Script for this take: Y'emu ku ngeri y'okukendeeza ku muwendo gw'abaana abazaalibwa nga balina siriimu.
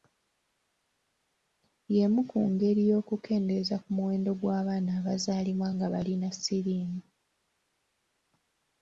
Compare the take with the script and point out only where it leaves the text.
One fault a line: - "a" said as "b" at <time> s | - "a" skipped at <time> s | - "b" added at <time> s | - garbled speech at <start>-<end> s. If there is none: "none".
none